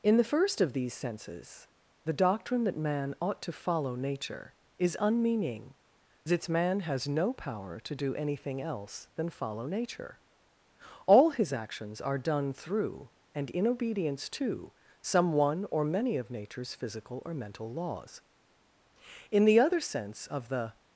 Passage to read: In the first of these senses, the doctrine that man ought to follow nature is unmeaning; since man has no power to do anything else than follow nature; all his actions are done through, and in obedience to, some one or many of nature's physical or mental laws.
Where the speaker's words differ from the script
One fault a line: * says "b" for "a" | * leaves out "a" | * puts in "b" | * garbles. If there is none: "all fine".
* puts in "In the other sense of the"